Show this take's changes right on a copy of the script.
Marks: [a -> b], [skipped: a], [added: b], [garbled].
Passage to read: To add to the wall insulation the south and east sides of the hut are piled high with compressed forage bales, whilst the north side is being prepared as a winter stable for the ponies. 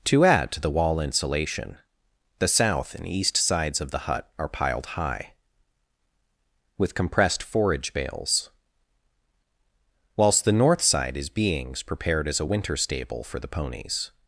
To add to the wall insulation the south and east sides of the hut are piled high with compressed forage bales, whilst the north side is [being -> beings] prepared as a winter stable for the ponies.